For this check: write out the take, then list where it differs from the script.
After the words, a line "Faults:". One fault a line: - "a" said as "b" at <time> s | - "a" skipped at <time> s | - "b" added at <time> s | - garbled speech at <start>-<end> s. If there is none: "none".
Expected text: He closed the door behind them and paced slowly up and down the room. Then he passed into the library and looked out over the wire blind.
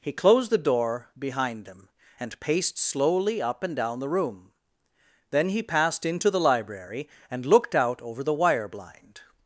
He closed the door behind them and paced slowly up and down the room. Then he passed into the library and looked out over the wire blind.
Faults:
none